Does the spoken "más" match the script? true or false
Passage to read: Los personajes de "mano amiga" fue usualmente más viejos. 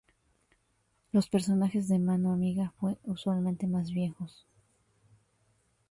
true